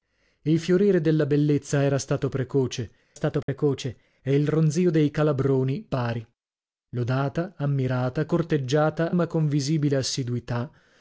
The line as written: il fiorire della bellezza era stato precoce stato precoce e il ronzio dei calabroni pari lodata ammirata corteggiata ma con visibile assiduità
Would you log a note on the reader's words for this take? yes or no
no